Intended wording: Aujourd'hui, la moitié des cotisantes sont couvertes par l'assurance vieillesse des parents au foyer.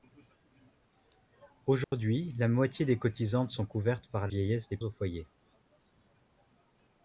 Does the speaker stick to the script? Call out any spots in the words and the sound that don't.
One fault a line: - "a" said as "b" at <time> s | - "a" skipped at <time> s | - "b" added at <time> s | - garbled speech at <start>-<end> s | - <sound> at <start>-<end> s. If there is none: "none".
- dropout at 1.8-1.9 s
- "l'assurance" skipped at 4.3 s
- "parents" skipped at 4.8 s